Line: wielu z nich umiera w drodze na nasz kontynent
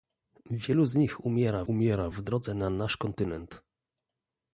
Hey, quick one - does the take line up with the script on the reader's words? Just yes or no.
no